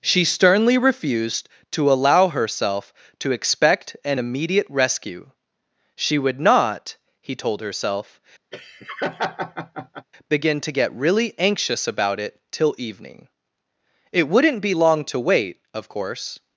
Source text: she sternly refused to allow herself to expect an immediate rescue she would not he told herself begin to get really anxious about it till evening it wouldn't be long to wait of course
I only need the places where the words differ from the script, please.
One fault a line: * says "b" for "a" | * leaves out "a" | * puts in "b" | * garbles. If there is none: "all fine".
all fine